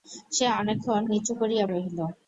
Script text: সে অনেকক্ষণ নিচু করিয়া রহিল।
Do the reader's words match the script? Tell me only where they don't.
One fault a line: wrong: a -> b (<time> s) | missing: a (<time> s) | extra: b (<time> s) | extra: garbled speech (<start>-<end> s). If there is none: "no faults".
no faults